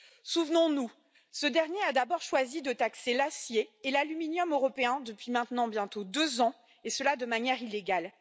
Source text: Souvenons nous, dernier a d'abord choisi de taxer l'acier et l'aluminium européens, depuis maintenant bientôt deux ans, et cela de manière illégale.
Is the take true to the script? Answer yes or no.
no